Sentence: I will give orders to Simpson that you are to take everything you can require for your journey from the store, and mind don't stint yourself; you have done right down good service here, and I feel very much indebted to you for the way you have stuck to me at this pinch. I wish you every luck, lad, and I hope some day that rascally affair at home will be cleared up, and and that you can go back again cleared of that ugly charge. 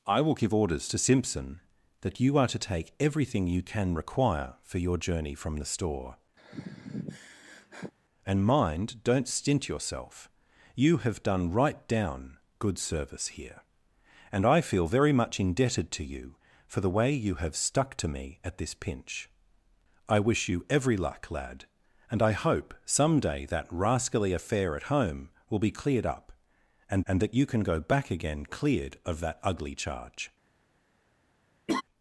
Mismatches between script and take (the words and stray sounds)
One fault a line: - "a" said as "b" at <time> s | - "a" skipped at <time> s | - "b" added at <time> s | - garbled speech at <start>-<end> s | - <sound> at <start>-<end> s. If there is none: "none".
- sigh at 6.4-7.9 s
- laugh at 31.7-31.8 s